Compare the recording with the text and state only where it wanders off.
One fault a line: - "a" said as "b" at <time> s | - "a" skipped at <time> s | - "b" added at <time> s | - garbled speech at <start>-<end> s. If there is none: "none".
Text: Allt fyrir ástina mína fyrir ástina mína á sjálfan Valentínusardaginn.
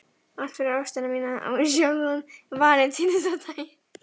- "fyrir ástina mína" skipped at 1.3 s